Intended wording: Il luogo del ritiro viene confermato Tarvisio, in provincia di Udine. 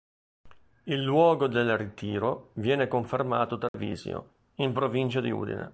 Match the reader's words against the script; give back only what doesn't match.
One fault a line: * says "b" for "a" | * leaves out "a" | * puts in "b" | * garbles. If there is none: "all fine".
all fine